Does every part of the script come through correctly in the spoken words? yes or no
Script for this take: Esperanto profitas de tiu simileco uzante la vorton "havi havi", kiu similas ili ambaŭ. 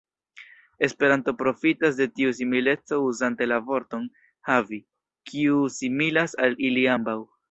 no